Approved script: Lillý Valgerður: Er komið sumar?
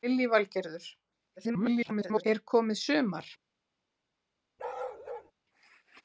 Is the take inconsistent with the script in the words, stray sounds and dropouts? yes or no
yes